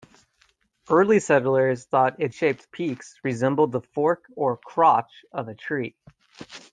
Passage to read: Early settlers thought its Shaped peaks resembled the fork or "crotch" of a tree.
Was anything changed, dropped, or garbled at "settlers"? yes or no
no